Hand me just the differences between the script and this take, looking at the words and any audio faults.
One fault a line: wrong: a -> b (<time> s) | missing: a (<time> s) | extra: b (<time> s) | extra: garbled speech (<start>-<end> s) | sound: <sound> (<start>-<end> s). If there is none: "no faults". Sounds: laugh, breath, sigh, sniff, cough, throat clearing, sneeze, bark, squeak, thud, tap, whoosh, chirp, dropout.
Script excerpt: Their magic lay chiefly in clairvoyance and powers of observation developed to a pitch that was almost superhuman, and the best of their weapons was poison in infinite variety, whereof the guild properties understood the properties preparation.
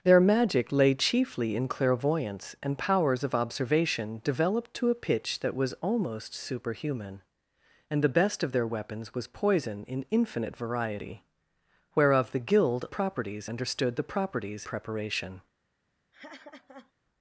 sound: laugh (16.1-16.9 s)